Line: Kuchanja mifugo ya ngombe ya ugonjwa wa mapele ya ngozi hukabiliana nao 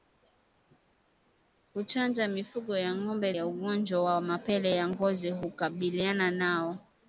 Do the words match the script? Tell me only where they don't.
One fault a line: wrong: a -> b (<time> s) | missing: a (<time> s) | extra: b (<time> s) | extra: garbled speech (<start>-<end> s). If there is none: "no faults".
no faults